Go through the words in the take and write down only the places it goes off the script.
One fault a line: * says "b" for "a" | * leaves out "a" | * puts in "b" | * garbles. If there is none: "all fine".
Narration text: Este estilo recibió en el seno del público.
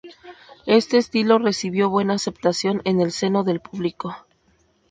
* puts in "buena aceptación"